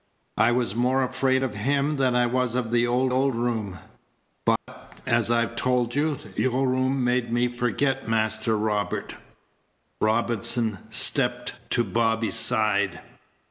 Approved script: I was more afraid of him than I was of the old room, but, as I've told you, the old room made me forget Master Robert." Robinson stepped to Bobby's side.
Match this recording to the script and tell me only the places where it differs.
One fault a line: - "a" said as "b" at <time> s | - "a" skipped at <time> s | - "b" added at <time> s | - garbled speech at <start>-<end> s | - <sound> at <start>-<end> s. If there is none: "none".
- "old" added at 3.1 s
- dropout at 4.6-4.7 s